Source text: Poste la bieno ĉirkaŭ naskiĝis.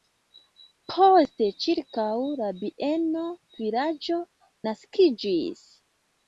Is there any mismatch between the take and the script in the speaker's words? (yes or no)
yes